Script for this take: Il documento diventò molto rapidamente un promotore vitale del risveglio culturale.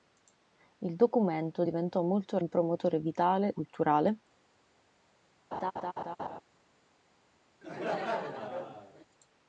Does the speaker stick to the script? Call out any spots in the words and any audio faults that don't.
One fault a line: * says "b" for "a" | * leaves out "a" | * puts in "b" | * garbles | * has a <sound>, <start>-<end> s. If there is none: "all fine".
* leaves out "rapidamente"
* leaves out "del risveglio"
* has a laugh, 5.5-6.4 s
* has a laugh, 7.6-9.1 s